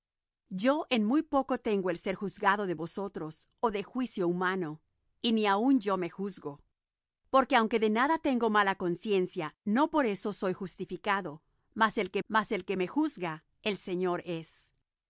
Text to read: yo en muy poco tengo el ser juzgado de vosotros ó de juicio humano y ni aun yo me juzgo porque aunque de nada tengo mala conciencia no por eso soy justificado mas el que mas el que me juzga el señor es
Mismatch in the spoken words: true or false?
false